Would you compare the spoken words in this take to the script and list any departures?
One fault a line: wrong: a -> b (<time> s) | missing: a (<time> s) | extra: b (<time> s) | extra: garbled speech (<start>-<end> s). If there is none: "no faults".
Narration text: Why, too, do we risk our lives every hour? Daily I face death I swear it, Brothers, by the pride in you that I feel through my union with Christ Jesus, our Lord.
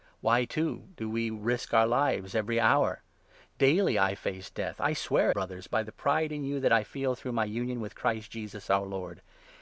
missing: it (5.3 s)